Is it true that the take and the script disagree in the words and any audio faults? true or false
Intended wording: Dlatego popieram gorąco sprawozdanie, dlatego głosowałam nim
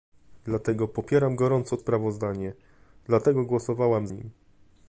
false